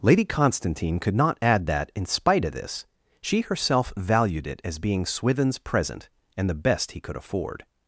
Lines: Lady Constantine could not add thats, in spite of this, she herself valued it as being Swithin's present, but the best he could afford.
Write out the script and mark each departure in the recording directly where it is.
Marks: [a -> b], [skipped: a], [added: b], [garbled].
Lady Constantine could not add [thats, -> that] in spite of this, she herself valued it as being Swithin's present, [but -> and] the best he could afford.